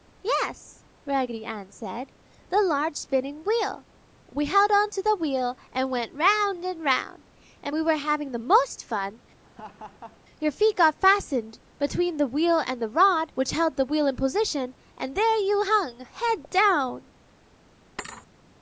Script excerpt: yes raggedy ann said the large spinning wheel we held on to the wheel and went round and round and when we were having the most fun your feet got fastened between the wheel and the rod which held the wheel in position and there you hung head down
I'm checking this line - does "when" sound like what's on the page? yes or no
no